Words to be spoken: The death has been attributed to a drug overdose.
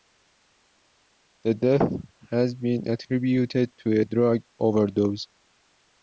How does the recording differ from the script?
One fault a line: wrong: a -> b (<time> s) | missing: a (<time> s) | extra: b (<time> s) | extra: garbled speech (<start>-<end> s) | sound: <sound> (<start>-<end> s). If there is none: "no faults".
no faults